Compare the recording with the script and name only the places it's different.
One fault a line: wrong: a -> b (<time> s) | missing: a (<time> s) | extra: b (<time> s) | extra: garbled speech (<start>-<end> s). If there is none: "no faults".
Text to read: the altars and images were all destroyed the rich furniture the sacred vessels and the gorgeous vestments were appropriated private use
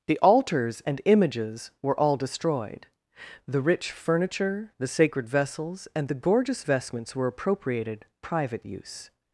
no faults